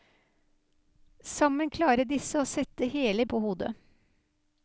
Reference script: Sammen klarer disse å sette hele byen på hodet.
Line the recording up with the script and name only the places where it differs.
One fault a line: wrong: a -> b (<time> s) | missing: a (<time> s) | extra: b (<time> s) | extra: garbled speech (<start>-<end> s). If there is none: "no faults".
missing: byen (3.2 s)